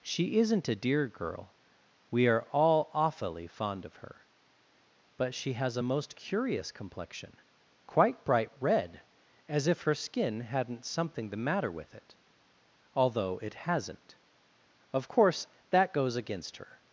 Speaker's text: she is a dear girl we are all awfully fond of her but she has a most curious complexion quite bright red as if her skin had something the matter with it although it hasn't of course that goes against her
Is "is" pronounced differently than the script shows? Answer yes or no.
yes